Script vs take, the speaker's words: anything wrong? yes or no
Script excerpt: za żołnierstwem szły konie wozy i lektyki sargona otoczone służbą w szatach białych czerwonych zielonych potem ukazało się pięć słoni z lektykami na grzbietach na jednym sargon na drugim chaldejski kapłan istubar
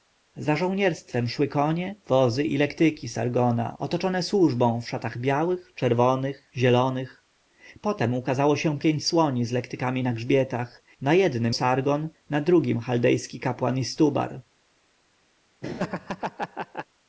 no